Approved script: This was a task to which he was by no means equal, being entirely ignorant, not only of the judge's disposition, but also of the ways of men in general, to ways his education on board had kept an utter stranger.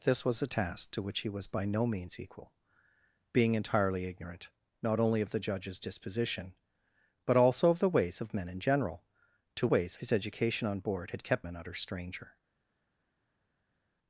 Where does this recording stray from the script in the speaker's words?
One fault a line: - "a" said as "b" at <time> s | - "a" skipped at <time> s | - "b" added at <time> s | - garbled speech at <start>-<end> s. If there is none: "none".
none